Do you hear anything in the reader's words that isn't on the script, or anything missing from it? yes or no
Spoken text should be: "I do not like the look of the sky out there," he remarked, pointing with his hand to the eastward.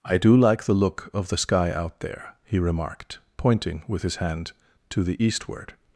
yes